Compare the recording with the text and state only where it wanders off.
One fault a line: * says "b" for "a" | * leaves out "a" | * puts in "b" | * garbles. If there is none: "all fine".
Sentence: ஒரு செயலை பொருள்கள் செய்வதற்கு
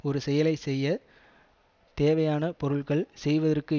* puts in "செய்ய தேவையான"